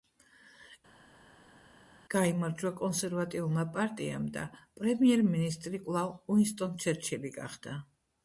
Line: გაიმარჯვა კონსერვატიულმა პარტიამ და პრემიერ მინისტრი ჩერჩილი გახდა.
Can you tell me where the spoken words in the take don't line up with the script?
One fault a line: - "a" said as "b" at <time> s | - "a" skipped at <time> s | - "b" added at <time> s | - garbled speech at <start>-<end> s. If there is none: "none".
- "კვლავ უინსტონ" added at 5.9 s